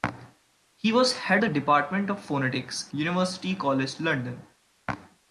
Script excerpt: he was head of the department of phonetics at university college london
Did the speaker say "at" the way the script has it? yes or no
no